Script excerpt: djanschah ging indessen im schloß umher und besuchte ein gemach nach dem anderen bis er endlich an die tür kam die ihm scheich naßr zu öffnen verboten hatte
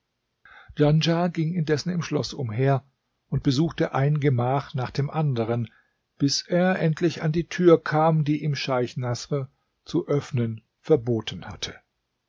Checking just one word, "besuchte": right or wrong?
right